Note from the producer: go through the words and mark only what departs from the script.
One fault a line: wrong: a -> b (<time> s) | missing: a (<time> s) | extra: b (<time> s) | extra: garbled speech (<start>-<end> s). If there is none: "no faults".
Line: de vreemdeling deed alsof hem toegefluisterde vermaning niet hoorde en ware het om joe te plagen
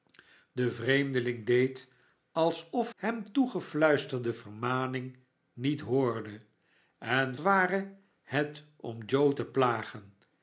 no faults